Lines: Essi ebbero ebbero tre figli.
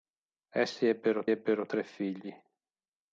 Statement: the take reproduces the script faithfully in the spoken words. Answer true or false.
true